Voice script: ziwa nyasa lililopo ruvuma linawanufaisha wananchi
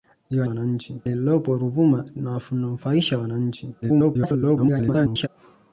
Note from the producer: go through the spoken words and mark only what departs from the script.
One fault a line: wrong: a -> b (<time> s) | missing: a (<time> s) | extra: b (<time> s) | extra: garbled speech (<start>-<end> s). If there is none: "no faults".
wrong: nyasa -> wananchi (0.4 s)
extra: garbled speech (3.8-5.3 s)